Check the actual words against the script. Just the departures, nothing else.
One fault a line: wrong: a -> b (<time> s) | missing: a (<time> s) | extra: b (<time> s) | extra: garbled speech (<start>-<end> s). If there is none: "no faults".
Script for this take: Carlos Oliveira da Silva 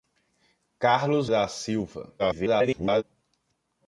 missing: Oliveira (1.3 s)
extra: garbled speech (2.2-3.0 s)